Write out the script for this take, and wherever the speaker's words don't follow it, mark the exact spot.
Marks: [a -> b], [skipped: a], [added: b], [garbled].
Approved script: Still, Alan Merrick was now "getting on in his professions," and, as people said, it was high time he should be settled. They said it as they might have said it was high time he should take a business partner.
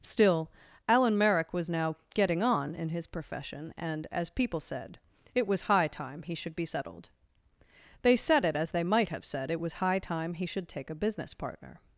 Still, Alan Merrick was now "getting on in his [professions," -> profession] and, as people said, it was high time he should be settled. They said it as they might have said it was high time he should take a business partner.